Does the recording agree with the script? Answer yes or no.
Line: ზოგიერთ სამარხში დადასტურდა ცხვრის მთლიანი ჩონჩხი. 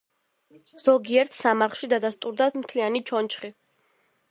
no